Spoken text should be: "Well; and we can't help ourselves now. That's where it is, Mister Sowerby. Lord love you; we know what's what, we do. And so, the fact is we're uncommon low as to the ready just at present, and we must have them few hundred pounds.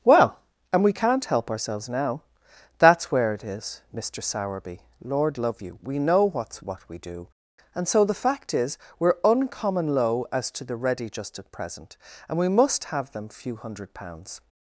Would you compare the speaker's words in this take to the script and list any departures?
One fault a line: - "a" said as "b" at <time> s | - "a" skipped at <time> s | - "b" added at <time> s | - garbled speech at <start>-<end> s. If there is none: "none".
none